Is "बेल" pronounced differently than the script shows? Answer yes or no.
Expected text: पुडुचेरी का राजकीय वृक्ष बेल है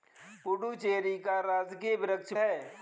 yes